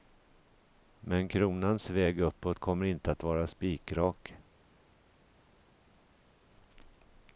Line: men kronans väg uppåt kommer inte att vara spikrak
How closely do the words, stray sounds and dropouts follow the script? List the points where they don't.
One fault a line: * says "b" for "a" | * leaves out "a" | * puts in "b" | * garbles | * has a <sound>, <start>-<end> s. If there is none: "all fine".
all fine